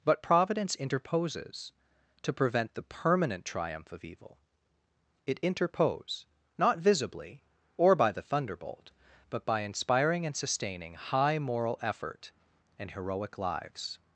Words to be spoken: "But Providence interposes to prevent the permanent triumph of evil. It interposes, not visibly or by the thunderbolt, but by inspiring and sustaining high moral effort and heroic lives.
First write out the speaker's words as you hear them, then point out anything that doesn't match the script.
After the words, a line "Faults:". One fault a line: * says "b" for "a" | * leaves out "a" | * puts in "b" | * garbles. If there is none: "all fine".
"But Providence interposes to prevent the permanent triumph of evil. It interpose, not visibly or by the thunderbolt, but by inspiring and sustaining high moral effort and heroic lives.
Faults:
* says "interpose" for "interposes"